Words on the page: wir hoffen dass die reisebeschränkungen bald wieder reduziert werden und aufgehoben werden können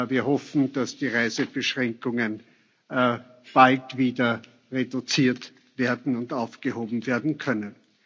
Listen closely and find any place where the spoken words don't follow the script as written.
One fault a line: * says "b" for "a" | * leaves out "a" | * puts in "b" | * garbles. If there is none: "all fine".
all fine